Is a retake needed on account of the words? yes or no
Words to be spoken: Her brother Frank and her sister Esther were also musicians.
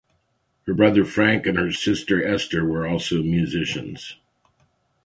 no